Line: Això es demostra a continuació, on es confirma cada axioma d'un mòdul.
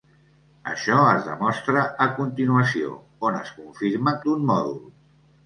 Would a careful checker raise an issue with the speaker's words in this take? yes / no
yes